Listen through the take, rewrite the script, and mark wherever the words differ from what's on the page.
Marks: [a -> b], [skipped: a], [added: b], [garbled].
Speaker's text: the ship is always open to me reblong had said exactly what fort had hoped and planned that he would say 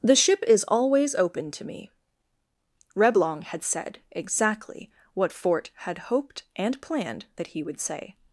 the ship is always open to me reblong had said exactly what fort had hoped and planned that he would say